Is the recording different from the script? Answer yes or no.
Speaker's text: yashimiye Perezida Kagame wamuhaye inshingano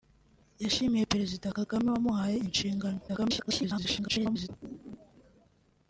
yes